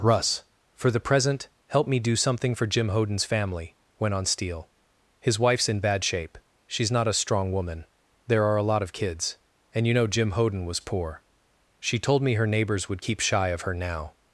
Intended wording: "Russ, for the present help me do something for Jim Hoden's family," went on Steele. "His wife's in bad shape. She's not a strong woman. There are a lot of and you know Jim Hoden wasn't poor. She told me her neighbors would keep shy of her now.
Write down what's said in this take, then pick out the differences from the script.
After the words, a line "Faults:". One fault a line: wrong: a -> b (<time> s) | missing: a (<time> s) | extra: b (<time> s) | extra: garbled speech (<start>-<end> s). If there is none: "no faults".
"Russ, for the present help me do something for Jim Hoden's family," went on Steele. "His wife's in bad shape. She's not a strong woman. There are a lot of kids, and you know Jim Hoden was poor. She told me her neighbors would keep shy of her now.
Faults:
extra: kids (8.9 s)
wrong: wasn't -> was (10.6 s)